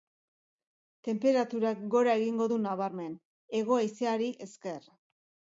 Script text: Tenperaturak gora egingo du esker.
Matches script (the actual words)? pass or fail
fail